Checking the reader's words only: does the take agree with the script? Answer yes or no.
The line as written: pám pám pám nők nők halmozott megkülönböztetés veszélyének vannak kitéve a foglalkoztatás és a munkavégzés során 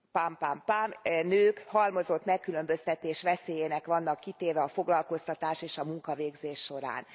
no